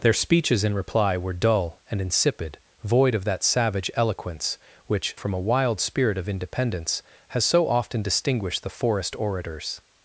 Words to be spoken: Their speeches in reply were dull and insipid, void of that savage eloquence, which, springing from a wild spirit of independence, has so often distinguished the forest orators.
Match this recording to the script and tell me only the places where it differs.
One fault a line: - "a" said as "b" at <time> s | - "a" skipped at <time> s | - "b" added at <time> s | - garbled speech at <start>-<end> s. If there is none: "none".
- "springing" skipped at 5.2 s